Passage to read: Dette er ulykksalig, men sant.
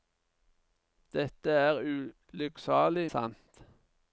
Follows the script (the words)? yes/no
no